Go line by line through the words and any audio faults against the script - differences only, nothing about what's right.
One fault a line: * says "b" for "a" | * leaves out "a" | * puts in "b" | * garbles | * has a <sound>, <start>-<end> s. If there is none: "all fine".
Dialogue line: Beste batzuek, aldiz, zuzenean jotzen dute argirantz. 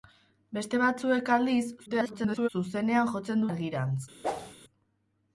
* garbles
* leaves out "dute"
* has a whoosh, 4.2-4.5 s